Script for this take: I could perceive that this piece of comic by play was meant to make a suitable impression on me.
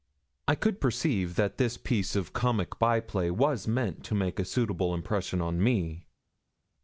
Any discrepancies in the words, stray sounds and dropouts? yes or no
no